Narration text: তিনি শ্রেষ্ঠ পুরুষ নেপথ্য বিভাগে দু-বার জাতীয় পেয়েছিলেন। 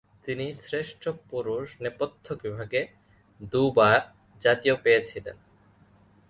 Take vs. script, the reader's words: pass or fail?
pass